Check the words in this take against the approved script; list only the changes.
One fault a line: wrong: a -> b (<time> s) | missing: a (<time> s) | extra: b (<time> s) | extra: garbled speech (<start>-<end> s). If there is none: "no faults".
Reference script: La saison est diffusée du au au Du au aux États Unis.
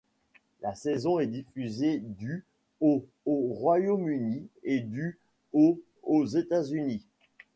extra: Royaume Uni et (3.5 s)